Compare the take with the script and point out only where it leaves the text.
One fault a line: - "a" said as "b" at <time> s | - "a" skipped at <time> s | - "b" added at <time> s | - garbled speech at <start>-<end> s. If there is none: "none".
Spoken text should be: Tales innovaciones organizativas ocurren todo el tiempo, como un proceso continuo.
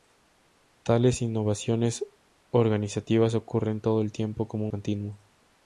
- "un proceso" skipped at 4.7 s